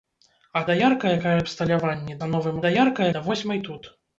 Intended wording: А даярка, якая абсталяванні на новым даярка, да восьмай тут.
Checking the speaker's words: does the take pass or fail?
pass